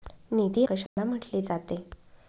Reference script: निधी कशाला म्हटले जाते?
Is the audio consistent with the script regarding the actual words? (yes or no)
yes